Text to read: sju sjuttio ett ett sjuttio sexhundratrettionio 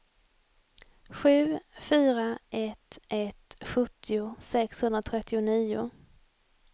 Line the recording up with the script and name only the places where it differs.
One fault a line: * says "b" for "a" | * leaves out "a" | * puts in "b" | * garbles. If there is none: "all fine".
* says "fyra" for "sjuttio"